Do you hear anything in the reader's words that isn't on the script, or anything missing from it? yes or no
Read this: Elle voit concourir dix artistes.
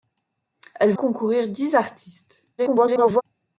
yes